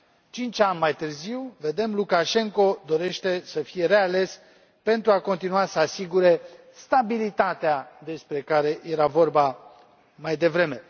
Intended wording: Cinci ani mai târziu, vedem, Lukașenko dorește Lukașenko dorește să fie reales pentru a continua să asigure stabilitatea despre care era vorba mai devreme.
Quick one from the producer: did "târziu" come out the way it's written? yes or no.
yes